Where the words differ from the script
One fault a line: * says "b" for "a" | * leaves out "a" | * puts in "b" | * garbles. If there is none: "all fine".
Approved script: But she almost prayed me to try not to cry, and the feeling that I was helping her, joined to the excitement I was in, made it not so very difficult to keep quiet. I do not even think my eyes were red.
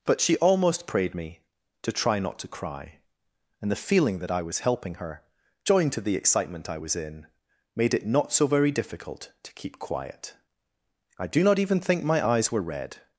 all fine